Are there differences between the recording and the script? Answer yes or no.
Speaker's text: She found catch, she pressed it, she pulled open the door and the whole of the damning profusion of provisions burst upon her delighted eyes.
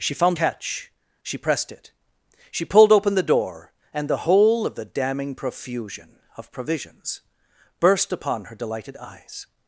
no